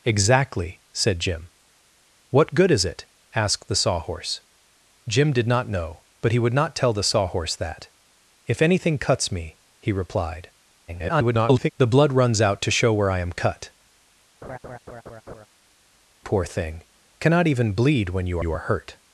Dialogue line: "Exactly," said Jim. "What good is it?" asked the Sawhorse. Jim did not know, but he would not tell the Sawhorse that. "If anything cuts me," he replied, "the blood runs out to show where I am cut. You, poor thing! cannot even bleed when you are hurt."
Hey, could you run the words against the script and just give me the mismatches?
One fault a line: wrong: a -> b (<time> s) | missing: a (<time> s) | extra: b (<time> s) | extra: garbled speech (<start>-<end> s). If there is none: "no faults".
extra: garbled speech (10.9-11.7 s)
missing: You (13.7 s)
extra: you (18.4 s)